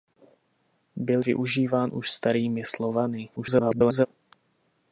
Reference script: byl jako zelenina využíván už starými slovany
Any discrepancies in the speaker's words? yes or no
yes